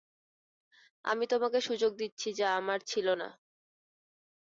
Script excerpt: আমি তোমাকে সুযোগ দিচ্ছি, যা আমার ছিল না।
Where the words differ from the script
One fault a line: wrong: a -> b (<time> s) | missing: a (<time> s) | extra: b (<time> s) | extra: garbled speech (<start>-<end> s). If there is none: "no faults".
no faults